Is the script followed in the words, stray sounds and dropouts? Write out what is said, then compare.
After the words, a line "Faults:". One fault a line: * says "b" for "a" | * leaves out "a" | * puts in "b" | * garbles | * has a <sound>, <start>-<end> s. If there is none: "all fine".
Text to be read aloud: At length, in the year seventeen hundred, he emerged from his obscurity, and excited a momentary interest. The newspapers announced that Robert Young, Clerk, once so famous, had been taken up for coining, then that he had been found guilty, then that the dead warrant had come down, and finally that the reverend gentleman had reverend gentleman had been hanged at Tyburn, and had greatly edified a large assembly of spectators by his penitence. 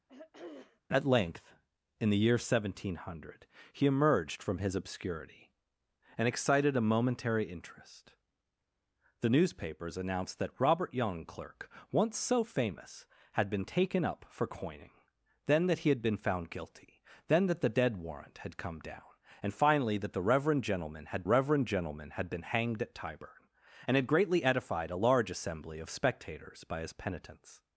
At length, in the year seventeen hundred, he emerged from his obscurity, and excited a momentary interest. The newspapers announced that Robert Young, Clerk, once so famous, had been taken up for coining, then that he had been found guilty, then that the dead warrant had come down, and finally that the reverend gentleman had reverend gentleman had been hanged at Tyburn, and had greatly edified a large assembly of spectators by his penitence.
Faults:
* has a throat clearing, 0.1-0.8 s